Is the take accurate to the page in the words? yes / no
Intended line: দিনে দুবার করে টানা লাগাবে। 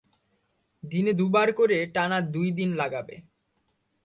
no